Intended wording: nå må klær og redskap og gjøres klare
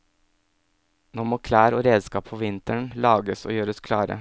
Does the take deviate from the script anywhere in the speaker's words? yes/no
yes